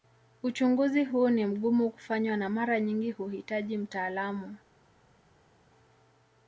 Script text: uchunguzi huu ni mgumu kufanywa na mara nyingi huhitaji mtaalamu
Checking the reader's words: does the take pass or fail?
pass